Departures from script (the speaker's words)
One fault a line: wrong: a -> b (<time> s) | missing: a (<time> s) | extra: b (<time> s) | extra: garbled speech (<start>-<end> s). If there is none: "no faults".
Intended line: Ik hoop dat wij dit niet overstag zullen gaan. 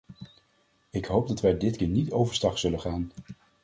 extra: keer (1.7 s)